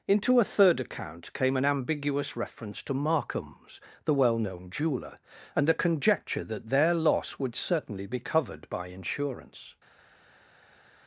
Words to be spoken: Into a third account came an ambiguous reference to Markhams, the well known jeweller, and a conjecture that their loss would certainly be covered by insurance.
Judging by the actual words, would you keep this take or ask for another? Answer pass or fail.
pass